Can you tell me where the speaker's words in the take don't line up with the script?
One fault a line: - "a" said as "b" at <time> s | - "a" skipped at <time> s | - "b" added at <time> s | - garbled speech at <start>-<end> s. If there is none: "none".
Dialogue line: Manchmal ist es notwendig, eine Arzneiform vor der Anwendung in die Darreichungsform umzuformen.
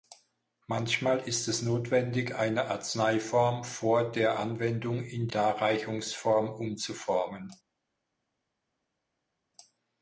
- "die" skipped at 5.3 s